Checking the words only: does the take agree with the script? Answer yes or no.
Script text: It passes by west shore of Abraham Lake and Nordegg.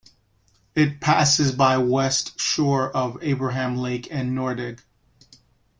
yes